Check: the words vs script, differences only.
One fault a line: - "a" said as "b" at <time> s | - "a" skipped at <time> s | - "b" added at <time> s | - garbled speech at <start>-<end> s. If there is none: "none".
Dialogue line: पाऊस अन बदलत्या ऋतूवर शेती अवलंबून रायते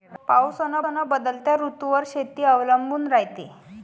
- "अन" added at 0.8 s